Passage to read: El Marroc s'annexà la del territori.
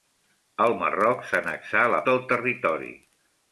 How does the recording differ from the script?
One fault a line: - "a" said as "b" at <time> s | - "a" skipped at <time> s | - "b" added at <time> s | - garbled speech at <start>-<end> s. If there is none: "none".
none